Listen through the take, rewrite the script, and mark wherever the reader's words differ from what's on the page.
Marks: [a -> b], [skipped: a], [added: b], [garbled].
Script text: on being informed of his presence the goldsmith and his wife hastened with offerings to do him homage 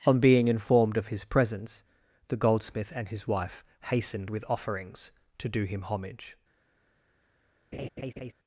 on being informed of his presence the goldsmith and his wife hastened with offerings to do him homage